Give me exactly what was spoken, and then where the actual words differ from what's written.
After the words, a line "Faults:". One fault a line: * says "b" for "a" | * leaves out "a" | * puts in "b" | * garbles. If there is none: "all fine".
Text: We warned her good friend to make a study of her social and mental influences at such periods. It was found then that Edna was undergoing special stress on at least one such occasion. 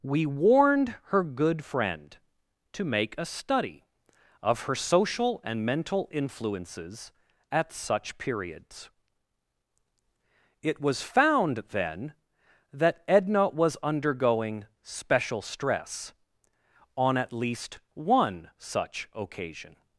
We warned her good friend to make a study of her social and mental influences at such periods. It was found then that Edna was undergoing special stress on at least one such occasion.
Faults:
all fine